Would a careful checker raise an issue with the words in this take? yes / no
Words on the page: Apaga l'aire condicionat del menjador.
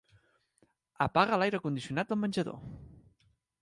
no